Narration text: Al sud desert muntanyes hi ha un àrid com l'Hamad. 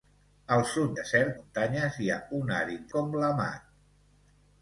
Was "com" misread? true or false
false